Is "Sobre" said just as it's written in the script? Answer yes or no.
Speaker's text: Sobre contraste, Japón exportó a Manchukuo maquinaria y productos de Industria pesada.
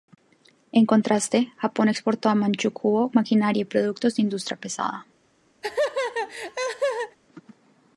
no